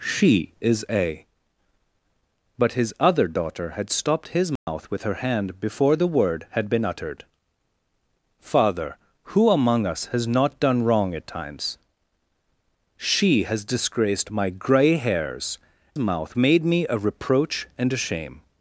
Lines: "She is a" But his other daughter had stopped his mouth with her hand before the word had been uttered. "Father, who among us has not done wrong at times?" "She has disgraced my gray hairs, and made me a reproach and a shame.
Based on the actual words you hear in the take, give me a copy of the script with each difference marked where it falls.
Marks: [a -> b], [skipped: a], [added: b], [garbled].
"She is a" But his other daughter had stopped his mouth with her hand before the word had been uttered. "Father, who among us has not done wrong at times?" "She has disgraced my gray hairs, [and -> mouth] made me a reproach and a shame.